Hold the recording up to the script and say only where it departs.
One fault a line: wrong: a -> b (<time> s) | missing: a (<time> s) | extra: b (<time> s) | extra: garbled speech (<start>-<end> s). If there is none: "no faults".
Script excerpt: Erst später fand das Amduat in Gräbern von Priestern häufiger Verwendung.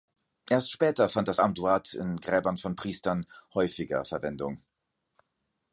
no faults